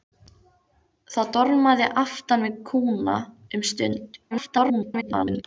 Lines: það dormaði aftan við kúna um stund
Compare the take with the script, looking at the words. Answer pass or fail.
fail